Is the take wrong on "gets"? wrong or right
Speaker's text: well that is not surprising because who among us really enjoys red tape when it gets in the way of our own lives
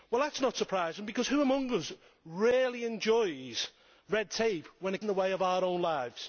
wrong